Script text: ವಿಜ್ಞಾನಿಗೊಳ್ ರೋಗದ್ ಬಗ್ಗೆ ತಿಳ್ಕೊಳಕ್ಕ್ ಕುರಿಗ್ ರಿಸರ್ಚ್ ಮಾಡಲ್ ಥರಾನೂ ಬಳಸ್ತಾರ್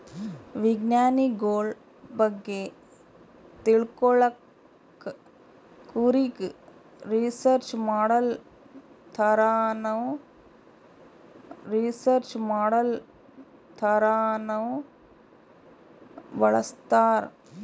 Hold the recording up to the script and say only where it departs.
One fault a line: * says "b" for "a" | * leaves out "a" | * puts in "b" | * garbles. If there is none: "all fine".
* leaves out "ರೋಗದ್"
* puts in "ರಿಸರ್ಚ್ ಮಾಡಲ್ ಥರಾನೂ"